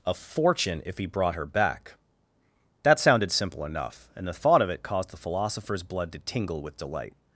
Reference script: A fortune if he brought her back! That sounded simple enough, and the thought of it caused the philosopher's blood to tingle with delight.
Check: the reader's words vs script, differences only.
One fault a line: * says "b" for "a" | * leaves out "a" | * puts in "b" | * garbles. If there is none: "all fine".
all fine